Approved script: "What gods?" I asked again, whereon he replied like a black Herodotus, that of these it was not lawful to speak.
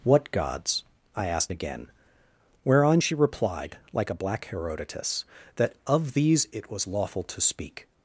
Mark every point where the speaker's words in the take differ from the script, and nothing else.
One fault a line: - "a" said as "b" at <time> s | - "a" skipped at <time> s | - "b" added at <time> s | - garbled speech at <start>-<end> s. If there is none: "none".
- "he" said as "she" at 3.0 s
- "not" skipped at 6.9 s